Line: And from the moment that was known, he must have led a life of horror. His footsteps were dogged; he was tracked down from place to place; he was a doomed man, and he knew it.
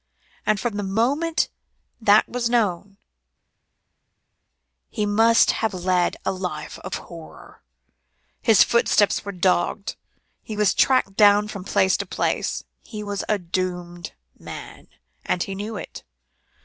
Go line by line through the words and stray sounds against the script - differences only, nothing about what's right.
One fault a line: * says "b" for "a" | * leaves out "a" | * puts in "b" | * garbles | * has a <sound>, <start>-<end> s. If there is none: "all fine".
all fine